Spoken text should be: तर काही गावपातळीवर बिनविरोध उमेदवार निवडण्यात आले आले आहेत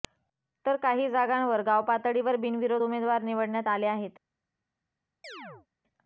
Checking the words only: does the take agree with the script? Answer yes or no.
no